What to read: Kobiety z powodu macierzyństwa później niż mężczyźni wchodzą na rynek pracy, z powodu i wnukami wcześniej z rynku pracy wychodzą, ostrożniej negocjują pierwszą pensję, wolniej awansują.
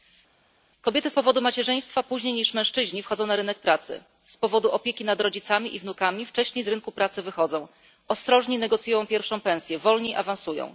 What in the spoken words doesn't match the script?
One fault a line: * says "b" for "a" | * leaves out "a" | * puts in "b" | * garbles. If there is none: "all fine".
* puts in "opieki nad rodzicami"